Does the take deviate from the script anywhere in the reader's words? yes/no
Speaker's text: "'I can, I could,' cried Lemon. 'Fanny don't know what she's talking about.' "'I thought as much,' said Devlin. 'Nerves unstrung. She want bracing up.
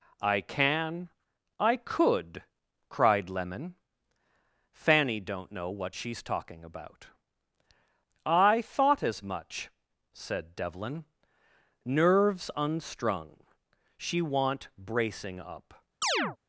no